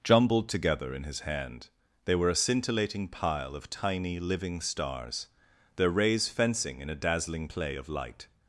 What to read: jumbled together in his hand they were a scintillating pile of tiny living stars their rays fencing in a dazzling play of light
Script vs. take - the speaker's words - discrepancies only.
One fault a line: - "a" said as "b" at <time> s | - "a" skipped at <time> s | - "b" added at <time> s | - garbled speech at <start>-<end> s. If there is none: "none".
none